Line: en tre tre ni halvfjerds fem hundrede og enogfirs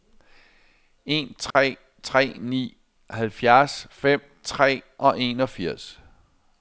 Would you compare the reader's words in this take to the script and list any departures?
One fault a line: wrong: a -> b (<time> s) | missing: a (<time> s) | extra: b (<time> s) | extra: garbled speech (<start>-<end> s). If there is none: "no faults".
wrong: hundrede -> tre (4.4 s)